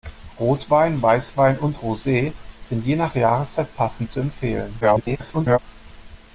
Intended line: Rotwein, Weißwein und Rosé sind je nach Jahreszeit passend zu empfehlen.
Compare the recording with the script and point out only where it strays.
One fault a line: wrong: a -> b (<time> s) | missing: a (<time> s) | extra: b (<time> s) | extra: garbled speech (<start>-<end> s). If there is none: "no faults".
extra: garbled speech (4.8-5.6 s)